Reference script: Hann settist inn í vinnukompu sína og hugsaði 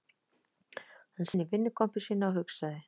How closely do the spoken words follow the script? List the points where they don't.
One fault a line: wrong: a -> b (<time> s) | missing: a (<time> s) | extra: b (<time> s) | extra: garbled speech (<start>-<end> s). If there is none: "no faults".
missing: settist (1.3 s)